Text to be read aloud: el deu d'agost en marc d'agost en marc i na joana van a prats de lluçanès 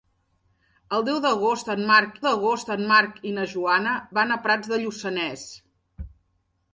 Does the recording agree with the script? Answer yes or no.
yes